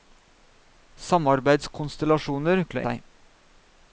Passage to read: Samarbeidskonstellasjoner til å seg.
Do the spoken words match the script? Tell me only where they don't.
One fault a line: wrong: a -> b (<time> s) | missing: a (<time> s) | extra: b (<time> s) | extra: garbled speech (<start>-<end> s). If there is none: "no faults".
no faults